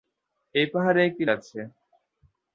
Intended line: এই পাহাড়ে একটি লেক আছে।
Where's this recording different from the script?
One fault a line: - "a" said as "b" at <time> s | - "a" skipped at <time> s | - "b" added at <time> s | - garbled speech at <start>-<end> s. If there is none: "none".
- "লেক" skipped at 1.2 s